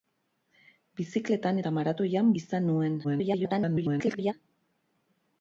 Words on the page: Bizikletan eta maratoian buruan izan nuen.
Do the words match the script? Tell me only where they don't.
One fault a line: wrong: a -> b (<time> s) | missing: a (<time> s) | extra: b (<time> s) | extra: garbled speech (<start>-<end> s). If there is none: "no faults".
missing: buruan (2.3 s)
extra: garbled speech (3.0-4.3 s)